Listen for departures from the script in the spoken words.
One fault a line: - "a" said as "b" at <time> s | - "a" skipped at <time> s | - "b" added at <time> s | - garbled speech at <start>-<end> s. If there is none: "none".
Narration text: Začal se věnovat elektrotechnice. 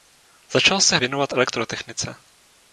none